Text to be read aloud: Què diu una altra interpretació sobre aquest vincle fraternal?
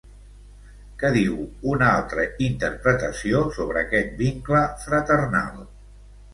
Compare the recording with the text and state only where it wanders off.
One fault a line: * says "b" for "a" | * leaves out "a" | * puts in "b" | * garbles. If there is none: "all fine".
all fine